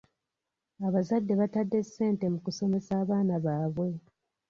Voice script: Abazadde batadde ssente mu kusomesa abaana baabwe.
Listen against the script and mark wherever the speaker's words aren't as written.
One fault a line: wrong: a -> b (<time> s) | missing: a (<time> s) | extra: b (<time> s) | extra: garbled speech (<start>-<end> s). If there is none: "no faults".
no faults